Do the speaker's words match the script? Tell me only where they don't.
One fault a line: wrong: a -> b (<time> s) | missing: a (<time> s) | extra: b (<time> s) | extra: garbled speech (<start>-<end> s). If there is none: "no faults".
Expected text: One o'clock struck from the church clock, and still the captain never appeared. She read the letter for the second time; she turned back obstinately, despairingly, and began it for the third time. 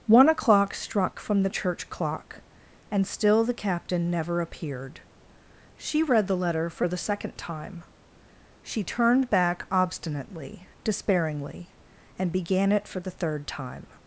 no faults